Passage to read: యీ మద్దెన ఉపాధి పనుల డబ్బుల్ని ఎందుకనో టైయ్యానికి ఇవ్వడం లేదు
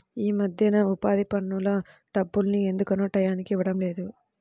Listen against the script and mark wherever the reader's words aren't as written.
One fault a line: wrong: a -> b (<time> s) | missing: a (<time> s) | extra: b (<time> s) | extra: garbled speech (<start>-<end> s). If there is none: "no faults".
no faults